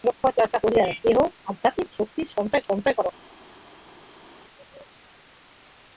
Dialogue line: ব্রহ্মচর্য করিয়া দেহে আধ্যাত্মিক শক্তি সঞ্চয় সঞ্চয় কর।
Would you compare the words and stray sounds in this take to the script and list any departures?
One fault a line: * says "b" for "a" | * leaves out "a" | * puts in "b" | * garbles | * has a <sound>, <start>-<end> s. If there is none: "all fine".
all fine